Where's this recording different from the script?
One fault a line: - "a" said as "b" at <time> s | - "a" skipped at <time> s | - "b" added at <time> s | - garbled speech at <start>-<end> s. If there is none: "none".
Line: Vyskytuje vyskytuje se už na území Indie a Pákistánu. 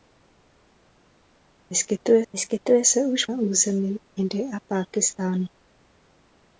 none